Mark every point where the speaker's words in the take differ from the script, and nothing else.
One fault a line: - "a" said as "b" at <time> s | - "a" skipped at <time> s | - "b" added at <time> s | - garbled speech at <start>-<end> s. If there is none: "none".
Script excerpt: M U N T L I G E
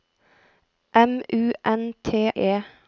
- "L I G" skipped at 2.3 s